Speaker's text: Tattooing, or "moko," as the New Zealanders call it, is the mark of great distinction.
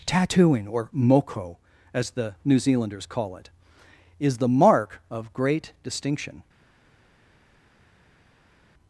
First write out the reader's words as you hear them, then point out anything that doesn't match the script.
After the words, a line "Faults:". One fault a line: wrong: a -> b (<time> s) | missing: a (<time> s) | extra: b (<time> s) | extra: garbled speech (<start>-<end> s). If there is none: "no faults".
Tattooing, or "moko," as the New Zealanders call it, is the mark of great distinction.
Faults:
no faults